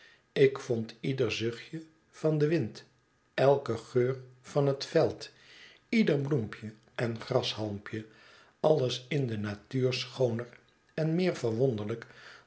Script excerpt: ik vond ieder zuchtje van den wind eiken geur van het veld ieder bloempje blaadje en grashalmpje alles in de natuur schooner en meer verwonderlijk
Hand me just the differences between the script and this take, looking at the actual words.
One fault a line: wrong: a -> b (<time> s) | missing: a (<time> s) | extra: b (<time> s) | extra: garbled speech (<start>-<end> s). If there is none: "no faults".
missing: blaadje (6.7 s)